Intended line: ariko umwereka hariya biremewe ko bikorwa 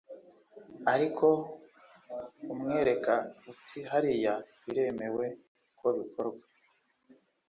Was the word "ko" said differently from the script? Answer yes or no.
no